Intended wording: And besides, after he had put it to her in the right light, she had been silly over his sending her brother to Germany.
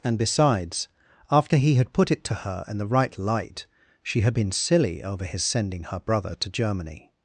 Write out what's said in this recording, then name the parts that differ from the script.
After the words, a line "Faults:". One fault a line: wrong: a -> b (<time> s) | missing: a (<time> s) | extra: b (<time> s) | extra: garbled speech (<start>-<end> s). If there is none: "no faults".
And besides, after he had put it to her in the right light, she had been silly over his sending her brother to Germany.
Faults:
no faults